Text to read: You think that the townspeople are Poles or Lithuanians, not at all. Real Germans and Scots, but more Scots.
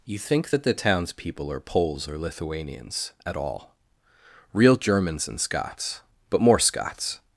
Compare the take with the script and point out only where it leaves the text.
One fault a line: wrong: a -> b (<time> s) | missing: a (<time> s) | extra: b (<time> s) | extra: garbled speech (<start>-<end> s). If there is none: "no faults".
missing: not (3.1 s)